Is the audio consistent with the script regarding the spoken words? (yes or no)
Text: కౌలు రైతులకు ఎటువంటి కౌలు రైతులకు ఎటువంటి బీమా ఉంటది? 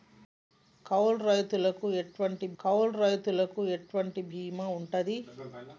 yes